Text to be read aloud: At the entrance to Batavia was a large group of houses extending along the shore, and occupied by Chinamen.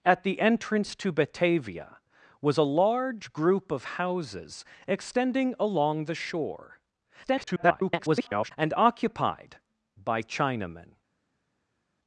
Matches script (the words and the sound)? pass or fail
fail